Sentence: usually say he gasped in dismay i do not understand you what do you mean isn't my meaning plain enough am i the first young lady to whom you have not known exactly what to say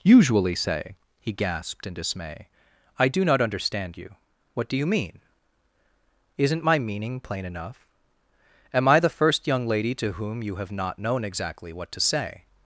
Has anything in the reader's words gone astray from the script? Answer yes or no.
no